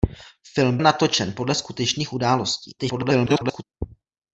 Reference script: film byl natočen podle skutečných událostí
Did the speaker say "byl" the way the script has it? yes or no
no